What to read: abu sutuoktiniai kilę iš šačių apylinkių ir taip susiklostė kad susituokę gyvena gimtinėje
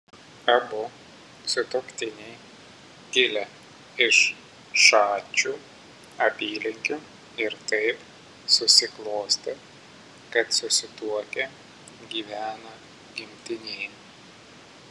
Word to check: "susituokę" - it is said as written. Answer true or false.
true